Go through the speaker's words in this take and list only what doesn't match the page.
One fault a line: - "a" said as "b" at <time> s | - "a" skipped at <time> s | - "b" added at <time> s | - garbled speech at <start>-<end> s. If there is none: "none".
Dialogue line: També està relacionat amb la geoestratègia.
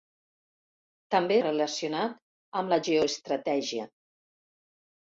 - "està" skipped at 1.4 s